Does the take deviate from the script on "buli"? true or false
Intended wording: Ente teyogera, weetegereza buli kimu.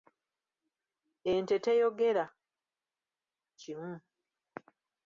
true